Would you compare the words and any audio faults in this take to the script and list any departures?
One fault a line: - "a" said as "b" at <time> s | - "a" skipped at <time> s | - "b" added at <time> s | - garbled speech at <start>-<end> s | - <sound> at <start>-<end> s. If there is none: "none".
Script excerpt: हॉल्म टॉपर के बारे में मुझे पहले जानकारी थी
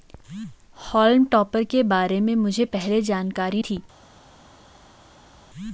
none